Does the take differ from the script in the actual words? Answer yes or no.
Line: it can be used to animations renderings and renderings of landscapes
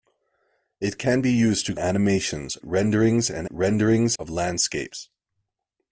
no